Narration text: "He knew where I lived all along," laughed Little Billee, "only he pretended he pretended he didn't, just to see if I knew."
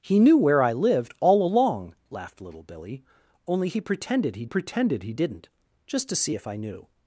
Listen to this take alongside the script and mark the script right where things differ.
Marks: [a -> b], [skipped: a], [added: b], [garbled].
"He knew where I lived all along," laughed Little Billee, "only he pretended he pretended he didn't, just to see if I knew."